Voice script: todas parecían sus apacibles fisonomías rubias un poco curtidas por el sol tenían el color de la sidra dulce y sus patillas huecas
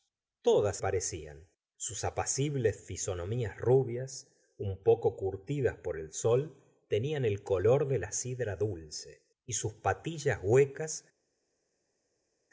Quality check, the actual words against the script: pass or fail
pass